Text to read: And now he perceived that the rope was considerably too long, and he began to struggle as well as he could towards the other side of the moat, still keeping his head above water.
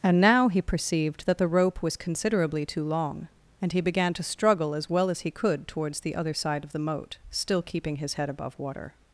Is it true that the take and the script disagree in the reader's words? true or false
false